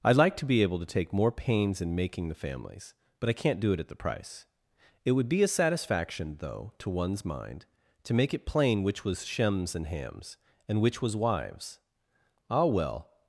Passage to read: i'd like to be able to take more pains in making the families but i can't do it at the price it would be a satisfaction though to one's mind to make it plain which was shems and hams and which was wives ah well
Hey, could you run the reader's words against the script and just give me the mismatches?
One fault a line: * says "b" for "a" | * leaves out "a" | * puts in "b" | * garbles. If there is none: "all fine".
all fine